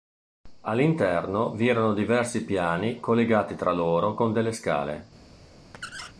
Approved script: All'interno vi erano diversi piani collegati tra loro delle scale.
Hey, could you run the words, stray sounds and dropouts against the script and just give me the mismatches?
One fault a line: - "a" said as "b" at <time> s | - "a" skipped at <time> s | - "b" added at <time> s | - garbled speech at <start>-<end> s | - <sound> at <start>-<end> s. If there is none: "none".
- "con" added at 4.2 s
- squeak at 5.7-6.1 s